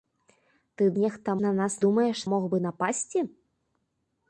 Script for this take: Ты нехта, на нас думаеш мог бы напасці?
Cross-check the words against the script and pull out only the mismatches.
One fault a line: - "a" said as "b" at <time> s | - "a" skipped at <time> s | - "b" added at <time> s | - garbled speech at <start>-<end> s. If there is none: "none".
none